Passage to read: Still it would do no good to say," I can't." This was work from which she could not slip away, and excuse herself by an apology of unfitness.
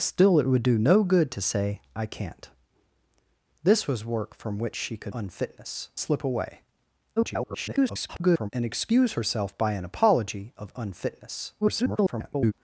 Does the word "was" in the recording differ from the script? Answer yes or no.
no